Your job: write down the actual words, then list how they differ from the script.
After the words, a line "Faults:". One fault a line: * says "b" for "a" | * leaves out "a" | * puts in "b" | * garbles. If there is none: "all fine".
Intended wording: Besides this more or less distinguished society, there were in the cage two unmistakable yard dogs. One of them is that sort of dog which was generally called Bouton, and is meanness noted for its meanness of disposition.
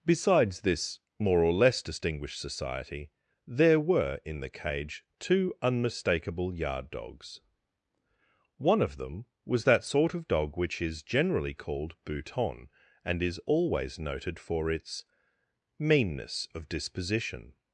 Besides this more or less distinguished society, there were in the cage two unmistakable yard dogs. One of them was that sort of dog which is generally called Bouton, and is always noted for its meanness of disposition.
Faults:
* says "was" for "is"
* says "is" for "was"
* says "always" for "meanness"